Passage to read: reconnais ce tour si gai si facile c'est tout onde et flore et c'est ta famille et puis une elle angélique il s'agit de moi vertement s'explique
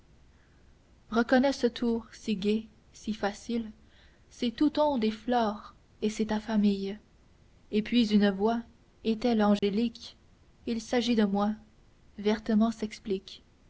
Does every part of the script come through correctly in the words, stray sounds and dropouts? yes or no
no